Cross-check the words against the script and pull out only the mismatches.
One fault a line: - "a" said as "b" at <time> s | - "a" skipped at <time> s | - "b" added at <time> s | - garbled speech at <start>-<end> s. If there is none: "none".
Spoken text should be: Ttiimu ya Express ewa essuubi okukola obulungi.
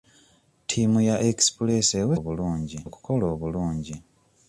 - "essuubi" said as "obulungi" at 2.2 s